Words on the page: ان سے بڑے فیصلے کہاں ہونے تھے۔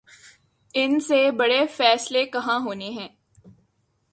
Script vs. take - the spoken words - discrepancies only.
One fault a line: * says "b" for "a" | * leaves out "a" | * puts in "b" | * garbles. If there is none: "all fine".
* says "ہیں" for "تھے"